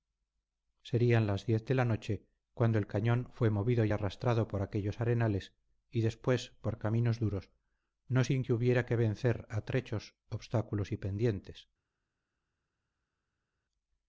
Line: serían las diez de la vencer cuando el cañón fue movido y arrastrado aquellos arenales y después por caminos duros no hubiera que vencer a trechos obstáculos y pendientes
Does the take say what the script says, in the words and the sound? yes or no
no